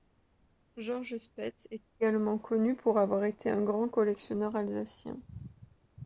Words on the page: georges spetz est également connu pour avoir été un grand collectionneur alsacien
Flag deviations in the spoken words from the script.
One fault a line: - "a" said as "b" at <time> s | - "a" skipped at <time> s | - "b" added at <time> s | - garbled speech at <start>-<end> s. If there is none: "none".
none